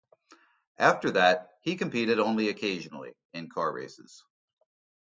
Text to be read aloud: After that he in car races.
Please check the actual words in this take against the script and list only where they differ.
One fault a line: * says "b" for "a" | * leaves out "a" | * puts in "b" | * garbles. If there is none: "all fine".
* puts in "competed only occasionally"